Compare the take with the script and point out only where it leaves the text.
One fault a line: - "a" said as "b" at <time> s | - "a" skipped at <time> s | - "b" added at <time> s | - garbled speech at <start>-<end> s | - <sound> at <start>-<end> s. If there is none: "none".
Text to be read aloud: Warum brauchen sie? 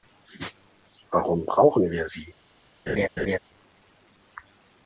- "wir" added at 1.9 s
- laugh at 2.9-3.4 s